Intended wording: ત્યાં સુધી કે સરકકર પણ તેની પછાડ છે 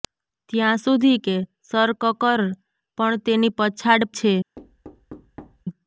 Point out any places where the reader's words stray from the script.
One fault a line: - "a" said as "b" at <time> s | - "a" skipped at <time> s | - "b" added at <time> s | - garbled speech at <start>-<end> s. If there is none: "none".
none